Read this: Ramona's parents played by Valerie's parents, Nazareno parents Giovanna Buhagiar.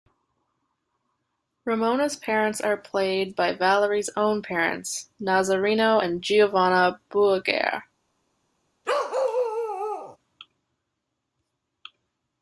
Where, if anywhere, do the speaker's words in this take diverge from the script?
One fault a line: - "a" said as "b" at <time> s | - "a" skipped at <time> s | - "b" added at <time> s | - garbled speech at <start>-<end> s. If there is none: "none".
- "are" added at 2.6 s
- "own" added at 4.2 s
- "parents" said as "and" at 6.0 s